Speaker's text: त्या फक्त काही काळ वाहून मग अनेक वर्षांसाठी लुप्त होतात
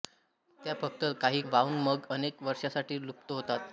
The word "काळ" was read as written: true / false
false